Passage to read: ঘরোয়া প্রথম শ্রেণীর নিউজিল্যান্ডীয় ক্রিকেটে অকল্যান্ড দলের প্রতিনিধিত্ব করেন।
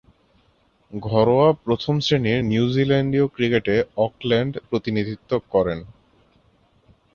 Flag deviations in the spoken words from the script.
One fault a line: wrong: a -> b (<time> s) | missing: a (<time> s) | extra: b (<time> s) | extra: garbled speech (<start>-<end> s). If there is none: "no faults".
missing: দলের (4.5 s)